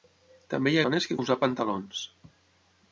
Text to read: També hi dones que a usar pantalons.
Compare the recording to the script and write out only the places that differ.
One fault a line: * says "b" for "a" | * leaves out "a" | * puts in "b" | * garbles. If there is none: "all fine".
all fine